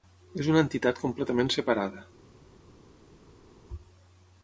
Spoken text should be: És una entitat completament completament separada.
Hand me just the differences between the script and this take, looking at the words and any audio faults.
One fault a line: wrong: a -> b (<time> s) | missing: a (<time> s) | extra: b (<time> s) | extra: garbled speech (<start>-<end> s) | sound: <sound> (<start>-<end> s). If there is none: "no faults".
missing: completament (1.5 s)